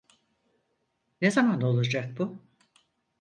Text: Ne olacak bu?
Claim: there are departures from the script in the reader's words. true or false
true